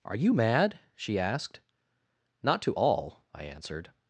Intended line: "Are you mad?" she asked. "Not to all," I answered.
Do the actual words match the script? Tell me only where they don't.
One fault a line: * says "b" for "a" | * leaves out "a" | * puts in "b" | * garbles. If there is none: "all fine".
all fine